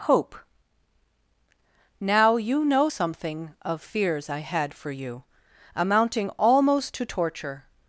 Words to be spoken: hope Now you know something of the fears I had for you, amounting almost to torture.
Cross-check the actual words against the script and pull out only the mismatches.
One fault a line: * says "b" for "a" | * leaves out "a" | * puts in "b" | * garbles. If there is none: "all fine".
* leaves out "the"